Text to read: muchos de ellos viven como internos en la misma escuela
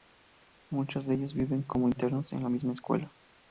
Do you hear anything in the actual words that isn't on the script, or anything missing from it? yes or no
no